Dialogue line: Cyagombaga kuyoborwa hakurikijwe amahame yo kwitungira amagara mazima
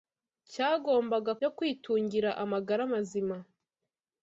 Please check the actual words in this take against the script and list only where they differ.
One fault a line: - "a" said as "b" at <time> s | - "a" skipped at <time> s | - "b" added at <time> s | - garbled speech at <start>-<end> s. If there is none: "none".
- "kuyoborwa hakurikijwe amahame" skipped at 1.3 s